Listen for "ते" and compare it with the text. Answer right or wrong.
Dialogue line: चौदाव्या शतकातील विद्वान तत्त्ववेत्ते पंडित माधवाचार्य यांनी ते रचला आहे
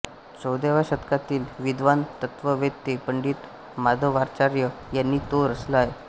wrong